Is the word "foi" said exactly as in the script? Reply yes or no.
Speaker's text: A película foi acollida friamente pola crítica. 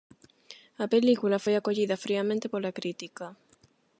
yes